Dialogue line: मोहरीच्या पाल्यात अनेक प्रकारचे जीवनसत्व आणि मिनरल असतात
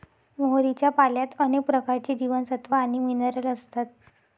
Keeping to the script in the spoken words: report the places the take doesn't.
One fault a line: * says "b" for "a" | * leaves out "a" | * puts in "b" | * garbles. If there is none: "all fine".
all fine